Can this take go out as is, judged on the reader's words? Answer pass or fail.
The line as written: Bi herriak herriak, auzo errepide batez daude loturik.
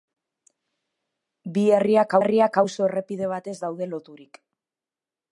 pass